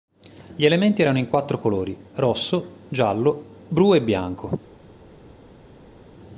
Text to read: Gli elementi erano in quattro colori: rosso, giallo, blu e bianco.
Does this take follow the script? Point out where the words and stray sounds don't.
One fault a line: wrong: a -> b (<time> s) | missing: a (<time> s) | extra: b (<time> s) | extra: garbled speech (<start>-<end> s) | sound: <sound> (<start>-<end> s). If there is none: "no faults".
no faults